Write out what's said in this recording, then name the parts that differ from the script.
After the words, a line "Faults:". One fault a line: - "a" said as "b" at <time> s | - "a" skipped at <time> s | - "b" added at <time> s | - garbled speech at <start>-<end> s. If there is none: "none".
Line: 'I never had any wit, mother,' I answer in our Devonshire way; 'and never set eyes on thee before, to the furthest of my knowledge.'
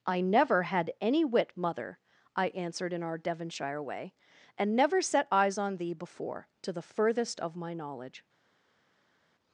'I never had any wit, mother,' I answered in our Devonshire way; 'and never set eyes on thee before, to the furthest of my knowledge.'
Faults:
- "answer" said as "answered" at 2.5 s